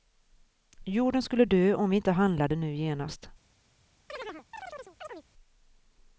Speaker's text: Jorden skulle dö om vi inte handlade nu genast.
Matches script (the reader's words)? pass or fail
pass